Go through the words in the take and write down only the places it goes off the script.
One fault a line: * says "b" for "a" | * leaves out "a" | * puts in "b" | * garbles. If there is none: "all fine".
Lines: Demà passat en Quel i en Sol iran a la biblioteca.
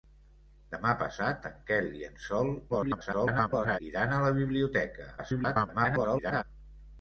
* garbles
* garbles